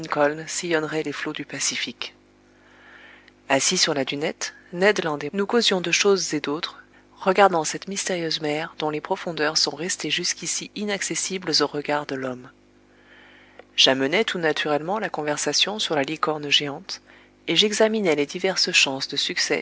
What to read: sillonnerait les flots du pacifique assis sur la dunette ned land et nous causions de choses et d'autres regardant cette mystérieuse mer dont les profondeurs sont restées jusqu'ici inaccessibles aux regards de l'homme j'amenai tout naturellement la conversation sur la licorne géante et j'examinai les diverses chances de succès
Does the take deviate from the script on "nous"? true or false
false